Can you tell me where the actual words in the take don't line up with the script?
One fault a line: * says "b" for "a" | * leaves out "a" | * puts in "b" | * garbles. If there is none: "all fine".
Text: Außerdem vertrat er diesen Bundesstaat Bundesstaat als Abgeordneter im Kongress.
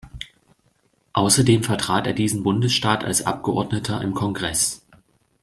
* leaves out "Bundesstaat"